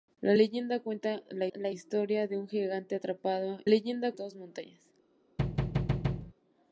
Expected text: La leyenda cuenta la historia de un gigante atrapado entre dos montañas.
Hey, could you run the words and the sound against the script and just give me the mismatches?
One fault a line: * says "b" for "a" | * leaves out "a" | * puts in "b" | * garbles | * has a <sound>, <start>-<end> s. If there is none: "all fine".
* puts in "la"
* says "leyenda" for "entre"
* has a thud, 5.4-6.3 s